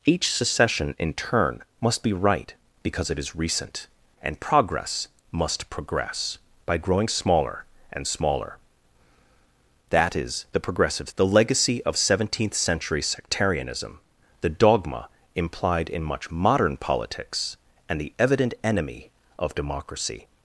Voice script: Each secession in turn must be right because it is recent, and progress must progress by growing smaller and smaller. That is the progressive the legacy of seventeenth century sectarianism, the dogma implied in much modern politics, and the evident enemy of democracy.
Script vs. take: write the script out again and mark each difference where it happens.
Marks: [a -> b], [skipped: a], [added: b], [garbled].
Each secession in turn must be right because it is recent, and progress must progress by growing smaller and smaller. That is the progressive the legacy of seventeenth century sectarianism, the dogma implied in much modern politics, and the evident enemy of democracy.